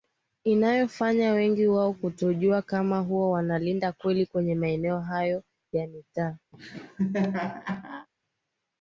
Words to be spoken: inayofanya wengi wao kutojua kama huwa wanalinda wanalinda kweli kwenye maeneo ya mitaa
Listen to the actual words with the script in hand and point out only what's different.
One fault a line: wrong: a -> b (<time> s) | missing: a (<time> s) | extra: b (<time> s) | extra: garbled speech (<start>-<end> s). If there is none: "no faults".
missing: wanalinda (3.9 s)
extra: hayo (5.0 s)